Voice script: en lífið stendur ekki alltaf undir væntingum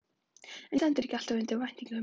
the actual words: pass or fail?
fail